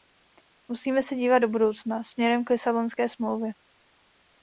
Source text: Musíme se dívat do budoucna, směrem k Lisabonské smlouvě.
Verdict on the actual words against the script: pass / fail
pass